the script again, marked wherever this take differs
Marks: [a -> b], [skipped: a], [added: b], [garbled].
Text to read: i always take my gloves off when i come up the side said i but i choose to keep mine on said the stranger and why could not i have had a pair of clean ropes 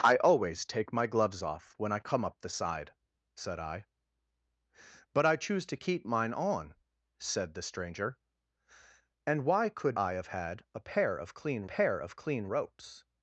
i always take my gloves off when i come up the side said i but i choose to keep mine on said the stranger and why could [skipped: not] i have had a pair of clean [added: pair of clean] ropes